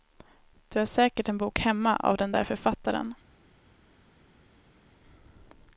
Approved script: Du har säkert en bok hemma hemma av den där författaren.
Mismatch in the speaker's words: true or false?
true